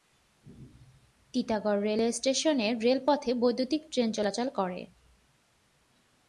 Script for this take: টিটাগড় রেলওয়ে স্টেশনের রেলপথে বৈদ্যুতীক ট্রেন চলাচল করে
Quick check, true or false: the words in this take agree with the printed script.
true